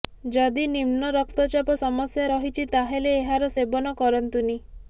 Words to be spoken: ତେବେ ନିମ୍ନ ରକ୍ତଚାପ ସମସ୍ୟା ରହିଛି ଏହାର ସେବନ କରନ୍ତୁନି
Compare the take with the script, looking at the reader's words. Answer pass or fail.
fail